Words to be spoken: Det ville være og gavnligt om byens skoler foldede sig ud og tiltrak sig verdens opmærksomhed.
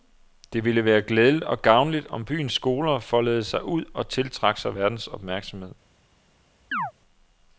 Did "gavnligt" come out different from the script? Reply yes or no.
no